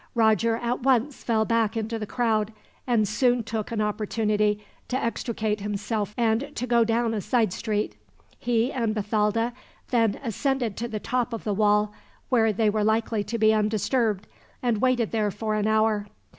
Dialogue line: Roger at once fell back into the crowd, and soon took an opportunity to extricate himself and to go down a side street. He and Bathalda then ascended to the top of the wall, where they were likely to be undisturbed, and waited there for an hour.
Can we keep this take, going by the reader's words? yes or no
yes